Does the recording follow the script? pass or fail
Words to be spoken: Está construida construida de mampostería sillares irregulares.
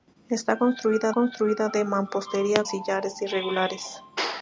pass